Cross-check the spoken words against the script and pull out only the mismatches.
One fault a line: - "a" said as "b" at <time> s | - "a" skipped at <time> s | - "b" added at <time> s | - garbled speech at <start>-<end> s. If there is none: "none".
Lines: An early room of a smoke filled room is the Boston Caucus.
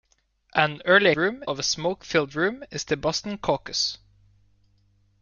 none